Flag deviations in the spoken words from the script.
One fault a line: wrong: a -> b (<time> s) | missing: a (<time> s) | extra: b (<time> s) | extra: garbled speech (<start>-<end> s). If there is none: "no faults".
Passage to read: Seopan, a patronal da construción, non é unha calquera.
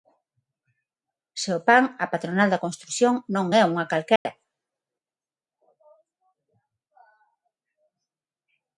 no faults